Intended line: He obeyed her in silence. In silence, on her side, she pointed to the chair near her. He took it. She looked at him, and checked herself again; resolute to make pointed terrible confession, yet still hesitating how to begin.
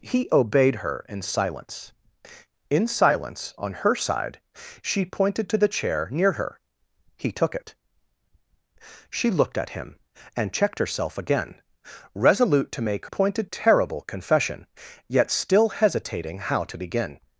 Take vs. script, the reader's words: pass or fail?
pass